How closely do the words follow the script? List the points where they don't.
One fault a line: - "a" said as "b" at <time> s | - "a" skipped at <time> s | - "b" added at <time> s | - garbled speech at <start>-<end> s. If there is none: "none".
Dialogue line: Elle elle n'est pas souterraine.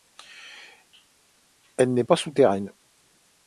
- "elle" skipped at 1.9 s